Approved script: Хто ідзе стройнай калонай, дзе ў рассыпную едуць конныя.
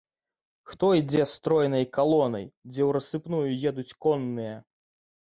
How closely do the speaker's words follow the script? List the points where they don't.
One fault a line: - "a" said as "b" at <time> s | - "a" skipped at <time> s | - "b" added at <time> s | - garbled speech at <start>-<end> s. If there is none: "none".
none